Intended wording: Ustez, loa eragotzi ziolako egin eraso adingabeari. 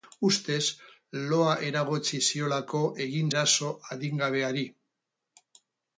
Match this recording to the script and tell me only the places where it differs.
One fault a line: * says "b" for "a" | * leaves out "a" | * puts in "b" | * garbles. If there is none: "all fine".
all fine